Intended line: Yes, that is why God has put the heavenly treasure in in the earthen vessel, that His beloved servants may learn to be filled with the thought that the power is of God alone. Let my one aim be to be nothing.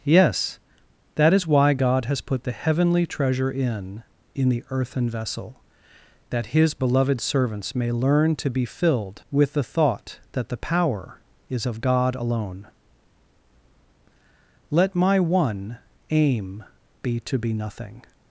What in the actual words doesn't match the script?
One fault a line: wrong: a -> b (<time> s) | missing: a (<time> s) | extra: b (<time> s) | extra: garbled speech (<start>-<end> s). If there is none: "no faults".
no faults